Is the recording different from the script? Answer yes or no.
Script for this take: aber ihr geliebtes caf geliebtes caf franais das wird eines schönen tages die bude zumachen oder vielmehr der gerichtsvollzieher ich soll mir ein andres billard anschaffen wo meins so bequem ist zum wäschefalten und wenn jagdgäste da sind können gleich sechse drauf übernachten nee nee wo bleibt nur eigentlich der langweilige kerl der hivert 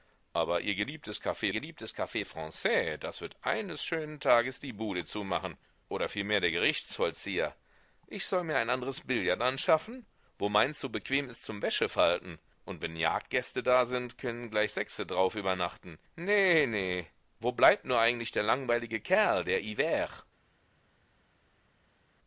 no